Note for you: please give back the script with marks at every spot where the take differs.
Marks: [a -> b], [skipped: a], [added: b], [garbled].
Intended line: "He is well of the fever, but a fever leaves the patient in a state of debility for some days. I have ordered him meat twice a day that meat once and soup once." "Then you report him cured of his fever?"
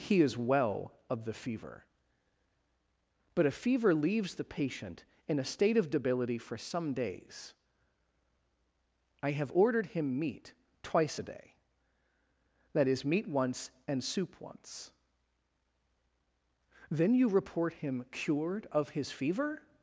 "He is well of the fever, but a fever leaves the patient in a state of debility for some days. I have ordered him meat twice a day that [added: is] meat once and soup once." "Then you report him cured of his fever?"